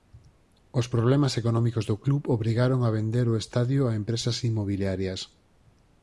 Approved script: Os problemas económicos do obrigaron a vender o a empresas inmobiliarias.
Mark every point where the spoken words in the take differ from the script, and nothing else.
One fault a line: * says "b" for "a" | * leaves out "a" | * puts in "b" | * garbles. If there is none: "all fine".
* puts in "club"
* puts in "estadio"